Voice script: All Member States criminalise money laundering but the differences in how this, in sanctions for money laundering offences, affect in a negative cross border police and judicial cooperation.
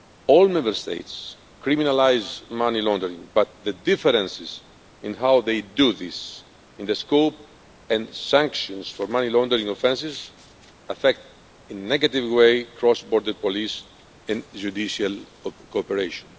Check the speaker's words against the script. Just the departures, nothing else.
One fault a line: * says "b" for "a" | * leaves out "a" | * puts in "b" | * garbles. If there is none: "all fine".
* puts in "they do"
* puts in "the scope and"
* puts in "way"